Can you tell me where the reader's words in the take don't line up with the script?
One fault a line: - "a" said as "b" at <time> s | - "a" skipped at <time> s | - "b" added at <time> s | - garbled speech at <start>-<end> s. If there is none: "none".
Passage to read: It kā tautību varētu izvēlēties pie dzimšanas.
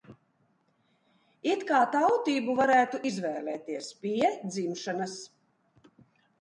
none